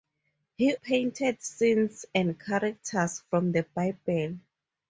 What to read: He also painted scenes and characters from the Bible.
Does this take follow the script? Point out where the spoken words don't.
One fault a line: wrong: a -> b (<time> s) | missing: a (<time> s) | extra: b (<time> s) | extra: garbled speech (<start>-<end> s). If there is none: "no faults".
missing: also (0.7 s)